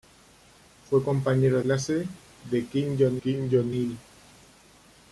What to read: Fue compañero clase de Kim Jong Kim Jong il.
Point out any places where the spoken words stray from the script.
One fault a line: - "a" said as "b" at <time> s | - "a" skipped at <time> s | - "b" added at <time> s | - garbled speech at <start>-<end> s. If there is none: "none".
none